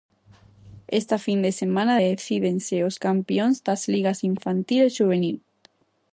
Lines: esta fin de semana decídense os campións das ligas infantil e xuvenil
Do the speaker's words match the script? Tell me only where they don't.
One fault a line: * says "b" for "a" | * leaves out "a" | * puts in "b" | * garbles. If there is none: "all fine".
all fine